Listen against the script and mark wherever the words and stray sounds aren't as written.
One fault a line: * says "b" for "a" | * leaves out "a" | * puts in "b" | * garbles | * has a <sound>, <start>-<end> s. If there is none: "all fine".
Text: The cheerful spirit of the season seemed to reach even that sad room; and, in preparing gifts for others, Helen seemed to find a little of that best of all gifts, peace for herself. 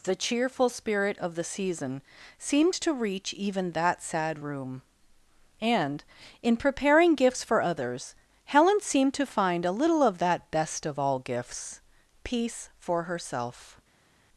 all fine